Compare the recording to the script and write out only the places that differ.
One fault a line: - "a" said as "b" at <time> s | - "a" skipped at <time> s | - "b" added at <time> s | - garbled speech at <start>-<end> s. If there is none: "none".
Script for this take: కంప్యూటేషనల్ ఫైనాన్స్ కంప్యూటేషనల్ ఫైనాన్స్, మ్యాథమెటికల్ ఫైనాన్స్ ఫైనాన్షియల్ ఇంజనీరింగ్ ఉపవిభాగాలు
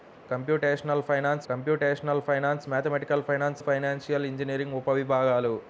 none